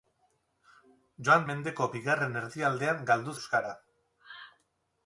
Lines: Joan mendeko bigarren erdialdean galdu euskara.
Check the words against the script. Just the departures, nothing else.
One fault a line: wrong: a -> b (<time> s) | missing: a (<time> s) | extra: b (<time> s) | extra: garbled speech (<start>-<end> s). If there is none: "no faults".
no faults